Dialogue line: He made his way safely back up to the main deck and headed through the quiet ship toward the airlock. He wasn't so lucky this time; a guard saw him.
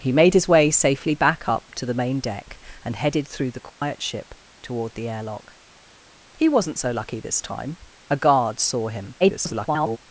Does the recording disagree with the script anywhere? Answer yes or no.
yes